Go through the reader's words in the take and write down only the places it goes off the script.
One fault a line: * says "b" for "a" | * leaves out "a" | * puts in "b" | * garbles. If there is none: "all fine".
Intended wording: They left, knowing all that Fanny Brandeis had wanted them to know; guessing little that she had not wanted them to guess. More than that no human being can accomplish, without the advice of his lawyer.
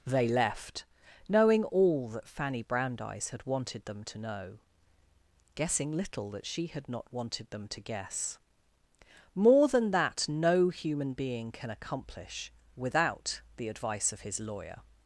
all fine